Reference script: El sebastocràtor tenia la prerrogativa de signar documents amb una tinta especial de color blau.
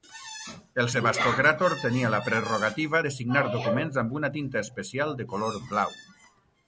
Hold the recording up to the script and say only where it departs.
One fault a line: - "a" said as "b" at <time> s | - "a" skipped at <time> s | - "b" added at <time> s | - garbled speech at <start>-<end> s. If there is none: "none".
none